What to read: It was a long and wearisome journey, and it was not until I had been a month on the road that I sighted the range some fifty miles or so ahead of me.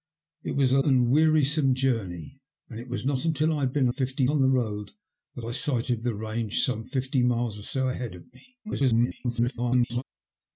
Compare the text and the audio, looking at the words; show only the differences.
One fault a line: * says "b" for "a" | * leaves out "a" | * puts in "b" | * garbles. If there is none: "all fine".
* leaves out "long"
* says "fifty" for "month"
* garbles